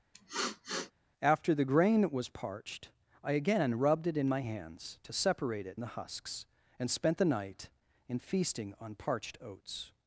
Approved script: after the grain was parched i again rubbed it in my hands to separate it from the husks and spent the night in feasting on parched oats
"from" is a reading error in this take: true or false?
true